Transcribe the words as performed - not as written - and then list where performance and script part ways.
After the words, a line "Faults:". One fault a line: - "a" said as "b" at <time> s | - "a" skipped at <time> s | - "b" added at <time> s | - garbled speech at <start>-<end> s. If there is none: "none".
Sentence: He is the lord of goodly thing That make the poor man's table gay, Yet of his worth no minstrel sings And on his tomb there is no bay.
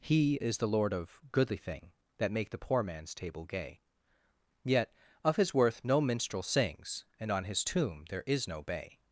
He is the lord of goodly thing That make the poor man's table gay, Yet of his worth no minstrel sings And on his tomb there is no bay.
Faults:
none